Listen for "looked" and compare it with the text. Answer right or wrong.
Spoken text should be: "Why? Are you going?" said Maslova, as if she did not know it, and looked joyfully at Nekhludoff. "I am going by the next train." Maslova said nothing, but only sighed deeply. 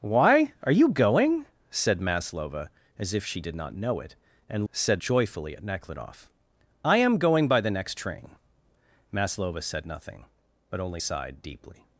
wrong